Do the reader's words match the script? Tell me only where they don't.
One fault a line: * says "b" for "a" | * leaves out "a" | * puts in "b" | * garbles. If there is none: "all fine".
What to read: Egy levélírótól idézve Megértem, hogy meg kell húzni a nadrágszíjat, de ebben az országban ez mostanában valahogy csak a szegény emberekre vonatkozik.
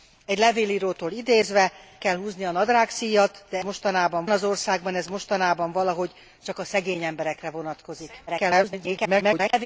* leaves out "Megértem hogy meg"
* says "mostanában" for "ebben"
* garbles